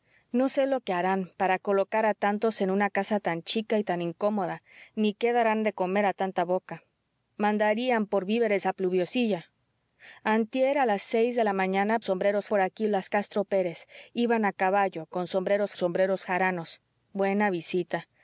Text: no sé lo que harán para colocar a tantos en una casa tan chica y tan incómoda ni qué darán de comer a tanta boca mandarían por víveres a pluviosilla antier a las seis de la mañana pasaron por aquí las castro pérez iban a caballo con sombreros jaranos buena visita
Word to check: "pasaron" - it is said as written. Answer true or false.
false